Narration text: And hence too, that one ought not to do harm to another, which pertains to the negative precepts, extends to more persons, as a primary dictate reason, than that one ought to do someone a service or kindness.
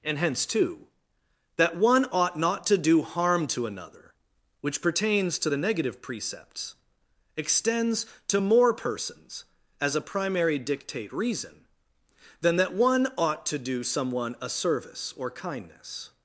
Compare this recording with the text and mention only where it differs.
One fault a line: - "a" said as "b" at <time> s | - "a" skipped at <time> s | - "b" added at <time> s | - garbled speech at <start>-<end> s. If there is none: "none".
none